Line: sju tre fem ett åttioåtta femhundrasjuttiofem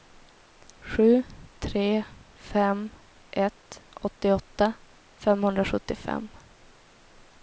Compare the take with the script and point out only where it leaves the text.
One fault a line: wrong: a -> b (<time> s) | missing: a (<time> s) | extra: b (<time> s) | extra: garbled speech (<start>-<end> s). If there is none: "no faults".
no faults